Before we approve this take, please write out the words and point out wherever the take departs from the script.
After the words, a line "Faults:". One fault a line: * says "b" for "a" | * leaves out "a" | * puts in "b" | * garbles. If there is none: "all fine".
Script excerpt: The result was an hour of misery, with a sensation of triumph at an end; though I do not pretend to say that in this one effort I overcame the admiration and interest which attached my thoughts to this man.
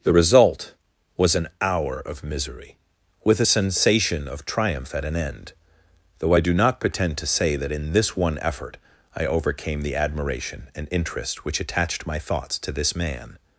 The result was an hour of misery, with a sensation of triumph at an end; though I do not pretend to say that in this one effort I overcame the admiration and interest which attached my thoughts to this man.
Faults:
all fine